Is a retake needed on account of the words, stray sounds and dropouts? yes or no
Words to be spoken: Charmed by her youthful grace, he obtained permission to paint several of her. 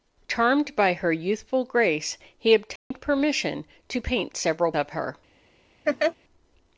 yes